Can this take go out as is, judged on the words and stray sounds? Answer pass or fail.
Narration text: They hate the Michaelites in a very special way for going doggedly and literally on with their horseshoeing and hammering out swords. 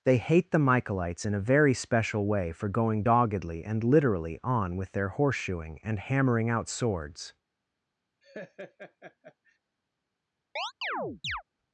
fail